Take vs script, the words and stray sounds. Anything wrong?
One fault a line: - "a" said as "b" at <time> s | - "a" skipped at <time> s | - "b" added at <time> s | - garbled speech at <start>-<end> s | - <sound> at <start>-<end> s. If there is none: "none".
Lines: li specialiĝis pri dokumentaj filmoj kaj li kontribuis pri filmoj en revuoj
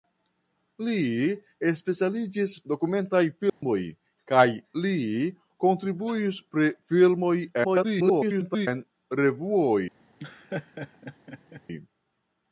- "pri" skipped at 2.5 s
- dropout at 3.5-3.6 s
- garbled speech at 7.6-8.7 s
- laugh at 10.2-11.6 s